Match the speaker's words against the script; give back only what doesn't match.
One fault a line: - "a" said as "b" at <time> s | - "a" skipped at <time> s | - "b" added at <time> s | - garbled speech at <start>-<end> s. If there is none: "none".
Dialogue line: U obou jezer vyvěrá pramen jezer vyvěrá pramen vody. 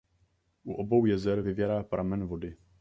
- "jezer vyvěrá pramen" skipped at 2.3 s